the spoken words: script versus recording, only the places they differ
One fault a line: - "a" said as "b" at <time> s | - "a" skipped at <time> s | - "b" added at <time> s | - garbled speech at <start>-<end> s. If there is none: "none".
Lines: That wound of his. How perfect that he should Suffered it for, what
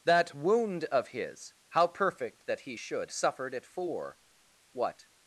none